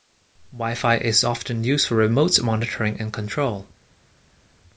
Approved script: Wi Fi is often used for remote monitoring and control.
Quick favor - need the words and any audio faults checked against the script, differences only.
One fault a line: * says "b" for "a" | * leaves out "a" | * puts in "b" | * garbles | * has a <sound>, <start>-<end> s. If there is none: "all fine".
all fine